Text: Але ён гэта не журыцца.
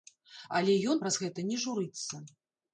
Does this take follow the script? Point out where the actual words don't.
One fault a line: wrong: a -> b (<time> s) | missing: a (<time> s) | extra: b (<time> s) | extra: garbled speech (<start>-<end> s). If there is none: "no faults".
extra: праз (1.0 s)